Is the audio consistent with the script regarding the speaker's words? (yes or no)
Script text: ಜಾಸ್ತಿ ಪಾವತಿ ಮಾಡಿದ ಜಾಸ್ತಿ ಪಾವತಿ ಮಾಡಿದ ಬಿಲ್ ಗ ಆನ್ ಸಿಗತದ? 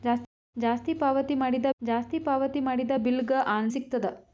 yes